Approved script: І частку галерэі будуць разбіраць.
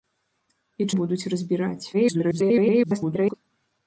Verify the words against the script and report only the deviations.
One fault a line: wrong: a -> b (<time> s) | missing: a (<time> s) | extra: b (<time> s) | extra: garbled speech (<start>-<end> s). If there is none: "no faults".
missing: частку галерэі (0.9 s)
extra: garbled speech (1.9-3.3 s)